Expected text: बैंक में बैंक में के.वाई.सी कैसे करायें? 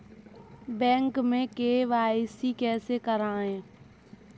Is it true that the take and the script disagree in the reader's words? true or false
true